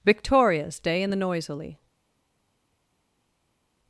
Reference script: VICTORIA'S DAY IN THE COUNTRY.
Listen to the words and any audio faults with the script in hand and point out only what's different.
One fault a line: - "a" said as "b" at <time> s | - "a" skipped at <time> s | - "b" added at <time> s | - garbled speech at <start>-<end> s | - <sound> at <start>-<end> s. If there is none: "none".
- "COUNTRY" said as "Noisily" at 1.2 s